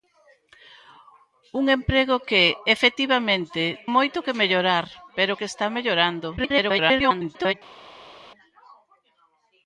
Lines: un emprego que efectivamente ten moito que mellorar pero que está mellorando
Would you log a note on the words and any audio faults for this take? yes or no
yes